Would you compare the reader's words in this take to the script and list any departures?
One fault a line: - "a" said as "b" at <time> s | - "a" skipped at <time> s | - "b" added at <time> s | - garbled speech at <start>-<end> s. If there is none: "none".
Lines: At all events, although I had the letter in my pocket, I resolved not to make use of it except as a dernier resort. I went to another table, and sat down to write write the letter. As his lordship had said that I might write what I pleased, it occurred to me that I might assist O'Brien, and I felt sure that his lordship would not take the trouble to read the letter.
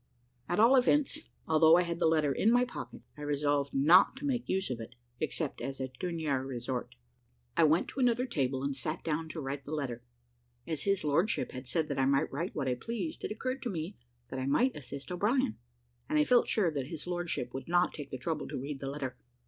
- "write" skipped at 9.7 s